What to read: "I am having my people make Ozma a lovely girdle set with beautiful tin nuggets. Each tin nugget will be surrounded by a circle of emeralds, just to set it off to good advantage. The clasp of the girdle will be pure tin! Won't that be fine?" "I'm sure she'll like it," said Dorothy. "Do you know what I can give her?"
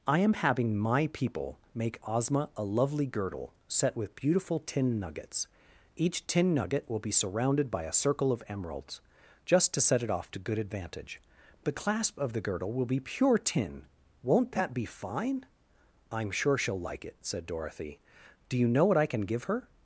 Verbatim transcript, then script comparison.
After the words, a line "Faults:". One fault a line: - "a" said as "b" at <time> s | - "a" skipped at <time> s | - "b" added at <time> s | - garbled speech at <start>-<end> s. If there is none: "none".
"I am having my people make Ozma a lovely girdle set with beautiful tin nuggets. Each tin nugget will be surrounded by a circle of emeralds, just to set it off to good advantage. The clasp of the girdle will be pure tin! Won't that be fine?" "I'm sure she'll like it," said Dorothy. "Do you know what I can give her?"
Faults:
none